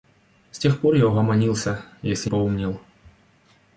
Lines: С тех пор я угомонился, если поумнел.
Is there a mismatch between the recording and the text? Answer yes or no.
no